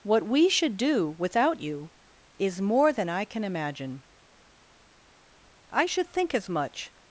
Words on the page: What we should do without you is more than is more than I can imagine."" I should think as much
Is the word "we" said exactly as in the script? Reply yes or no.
yes